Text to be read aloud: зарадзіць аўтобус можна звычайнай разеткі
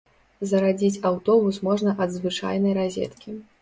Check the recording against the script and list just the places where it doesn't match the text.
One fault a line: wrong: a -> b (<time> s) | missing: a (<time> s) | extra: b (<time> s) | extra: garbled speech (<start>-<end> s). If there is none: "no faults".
extra: ад (2.1 s)